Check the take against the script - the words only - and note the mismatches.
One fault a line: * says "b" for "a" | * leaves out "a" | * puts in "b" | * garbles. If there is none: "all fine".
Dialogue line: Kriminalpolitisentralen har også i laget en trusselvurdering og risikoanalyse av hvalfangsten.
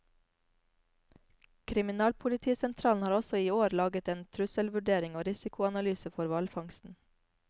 * puts in "år"
* says "for" for "av"